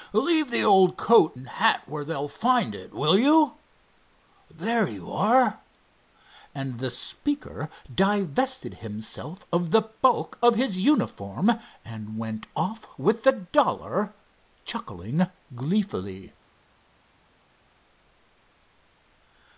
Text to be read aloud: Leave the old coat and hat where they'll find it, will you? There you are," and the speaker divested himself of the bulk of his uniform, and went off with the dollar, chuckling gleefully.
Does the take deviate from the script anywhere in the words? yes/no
no